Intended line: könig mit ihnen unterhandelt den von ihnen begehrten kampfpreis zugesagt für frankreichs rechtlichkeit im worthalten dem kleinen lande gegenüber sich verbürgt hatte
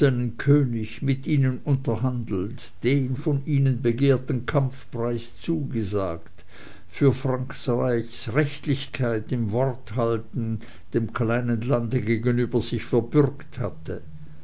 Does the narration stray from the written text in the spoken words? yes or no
no